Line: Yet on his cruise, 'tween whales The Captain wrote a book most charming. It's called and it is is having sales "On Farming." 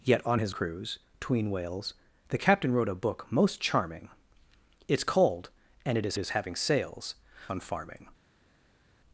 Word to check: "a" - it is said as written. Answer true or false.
true